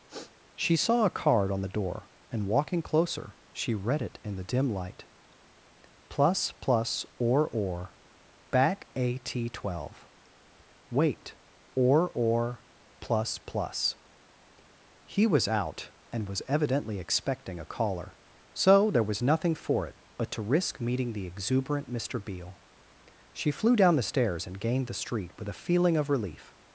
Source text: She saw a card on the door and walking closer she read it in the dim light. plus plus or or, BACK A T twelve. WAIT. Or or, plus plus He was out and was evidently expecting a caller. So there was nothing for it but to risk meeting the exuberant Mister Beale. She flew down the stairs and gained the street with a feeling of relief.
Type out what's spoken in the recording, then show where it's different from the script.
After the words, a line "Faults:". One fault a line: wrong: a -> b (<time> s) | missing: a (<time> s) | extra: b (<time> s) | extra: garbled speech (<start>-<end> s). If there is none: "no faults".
She saw a card on the door and walking closer she read it in the dim light. plus plus or or, BACK A T twelve. WAIT. Or or, plus plus He was out and was evidently expecting a caller. So there was nothing for it but to risk meeting the exuberant Mister Beale. She flew down the stairs and gained the street with a feeling of relief.
Faults:
no faults